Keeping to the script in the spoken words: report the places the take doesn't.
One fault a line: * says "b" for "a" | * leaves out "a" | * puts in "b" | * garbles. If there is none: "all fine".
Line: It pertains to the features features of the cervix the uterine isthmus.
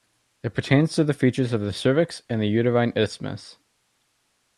* leaves out "features"
* puts in "and"